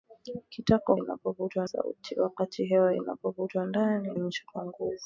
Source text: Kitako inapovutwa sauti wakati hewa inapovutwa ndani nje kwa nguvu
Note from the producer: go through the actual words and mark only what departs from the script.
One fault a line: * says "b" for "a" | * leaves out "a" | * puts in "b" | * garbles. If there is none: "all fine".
all fine